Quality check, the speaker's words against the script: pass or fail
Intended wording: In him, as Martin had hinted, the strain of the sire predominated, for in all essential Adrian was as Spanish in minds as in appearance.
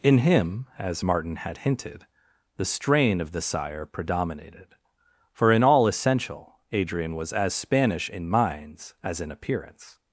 pass